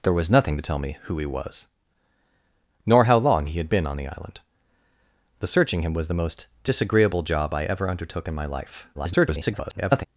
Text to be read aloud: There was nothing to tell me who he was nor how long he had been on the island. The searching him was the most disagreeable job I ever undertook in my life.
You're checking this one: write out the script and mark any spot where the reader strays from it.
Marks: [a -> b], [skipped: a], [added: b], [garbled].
There was nothing to tell me who he was nor how long he had been on the island. The searching him was the most disagreeable job I ever undertook in my life. [garbled]